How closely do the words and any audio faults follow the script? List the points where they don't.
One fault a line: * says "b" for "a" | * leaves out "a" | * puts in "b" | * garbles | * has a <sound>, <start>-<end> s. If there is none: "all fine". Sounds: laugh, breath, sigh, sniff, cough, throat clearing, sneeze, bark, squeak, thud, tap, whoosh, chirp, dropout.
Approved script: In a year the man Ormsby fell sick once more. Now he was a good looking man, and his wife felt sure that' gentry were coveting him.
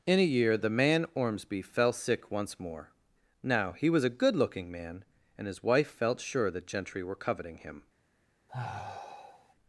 * has a sigh, 8.5-9.5 s